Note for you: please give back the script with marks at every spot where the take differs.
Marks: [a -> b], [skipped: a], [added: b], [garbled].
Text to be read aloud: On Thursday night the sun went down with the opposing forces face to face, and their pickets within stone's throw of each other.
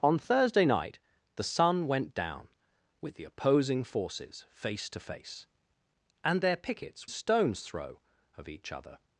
On Thursday night the sun went down with the opposing forces face to face, and their pickets [skipped: within] stone's throw of each other.